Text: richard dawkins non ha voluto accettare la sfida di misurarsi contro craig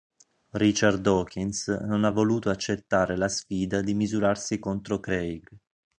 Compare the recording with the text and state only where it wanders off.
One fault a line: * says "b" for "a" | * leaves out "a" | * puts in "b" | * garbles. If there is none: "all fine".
all fine